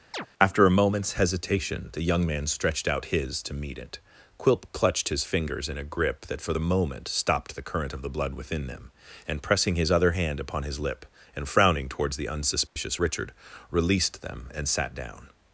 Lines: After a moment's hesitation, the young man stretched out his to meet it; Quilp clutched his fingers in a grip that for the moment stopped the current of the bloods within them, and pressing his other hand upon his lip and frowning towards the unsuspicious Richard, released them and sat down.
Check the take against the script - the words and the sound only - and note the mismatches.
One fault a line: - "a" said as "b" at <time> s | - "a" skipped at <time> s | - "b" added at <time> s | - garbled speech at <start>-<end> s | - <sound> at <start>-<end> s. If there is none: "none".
- chirp at 0.1-0.3 s
- "bloods" said as "blood" at 8.1 s
- dropout at 12.7-12.8 s